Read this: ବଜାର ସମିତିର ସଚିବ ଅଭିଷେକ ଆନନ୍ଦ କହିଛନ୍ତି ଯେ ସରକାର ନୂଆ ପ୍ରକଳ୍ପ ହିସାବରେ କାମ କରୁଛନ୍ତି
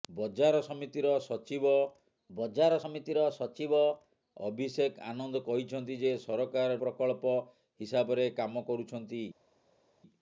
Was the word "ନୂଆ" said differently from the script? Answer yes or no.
yes